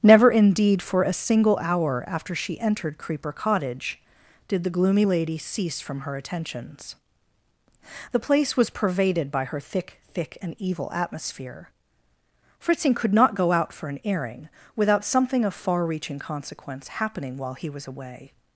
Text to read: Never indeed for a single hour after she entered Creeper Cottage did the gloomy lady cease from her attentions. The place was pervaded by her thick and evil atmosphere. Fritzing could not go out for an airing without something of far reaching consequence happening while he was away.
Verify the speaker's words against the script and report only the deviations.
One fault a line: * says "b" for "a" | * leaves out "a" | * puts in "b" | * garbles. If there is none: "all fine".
* puts in "thick"